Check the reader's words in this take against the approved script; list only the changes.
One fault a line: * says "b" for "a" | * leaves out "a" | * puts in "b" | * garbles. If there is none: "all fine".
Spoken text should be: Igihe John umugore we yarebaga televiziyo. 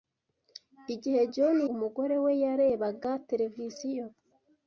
all fine